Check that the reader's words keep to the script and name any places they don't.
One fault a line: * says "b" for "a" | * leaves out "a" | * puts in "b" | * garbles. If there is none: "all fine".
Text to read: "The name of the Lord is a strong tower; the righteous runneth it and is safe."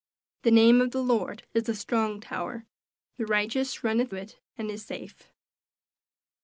all fine